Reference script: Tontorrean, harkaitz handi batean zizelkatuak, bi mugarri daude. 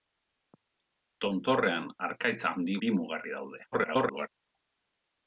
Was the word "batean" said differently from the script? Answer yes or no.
yes